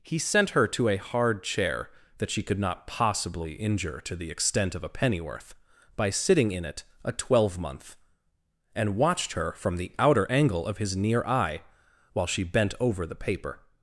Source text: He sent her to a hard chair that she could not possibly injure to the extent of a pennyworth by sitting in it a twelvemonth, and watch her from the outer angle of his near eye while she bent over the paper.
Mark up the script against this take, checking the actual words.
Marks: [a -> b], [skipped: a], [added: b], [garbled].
He sent her to a hard chair that she could not possibly injure to the extent of a pennyworth by sitting in it a twelvemonth, and [watch -> watched] her from the outer angle of his near eye while she bent over the paper.